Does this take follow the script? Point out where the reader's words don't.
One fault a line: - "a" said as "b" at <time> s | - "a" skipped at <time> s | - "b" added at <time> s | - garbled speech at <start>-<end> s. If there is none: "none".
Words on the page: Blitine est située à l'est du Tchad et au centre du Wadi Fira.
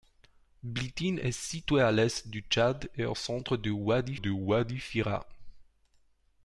- "du Wadi" added at 4.1 s